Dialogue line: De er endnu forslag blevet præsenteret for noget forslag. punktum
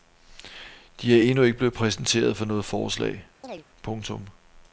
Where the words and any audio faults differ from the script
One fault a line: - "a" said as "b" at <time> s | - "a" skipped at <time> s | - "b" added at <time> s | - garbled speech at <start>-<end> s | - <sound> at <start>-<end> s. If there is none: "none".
- "forslag" said as "ikke" at 1.4 s
- chirp at 3.4-3.6 s